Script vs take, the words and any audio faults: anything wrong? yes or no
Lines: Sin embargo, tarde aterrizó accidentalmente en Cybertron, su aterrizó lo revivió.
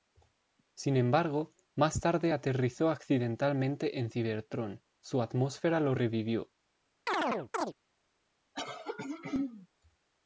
yes